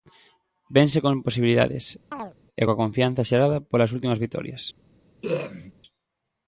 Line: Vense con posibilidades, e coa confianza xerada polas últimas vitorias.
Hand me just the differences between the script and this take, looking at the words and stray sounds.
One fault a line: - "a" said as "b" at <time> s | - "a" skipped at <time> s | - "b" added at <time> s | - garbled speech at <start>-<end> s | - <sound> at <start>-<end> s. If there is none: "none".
- chirp at 2.1-2.3 s
- throat clearing at 5.2-5.7 s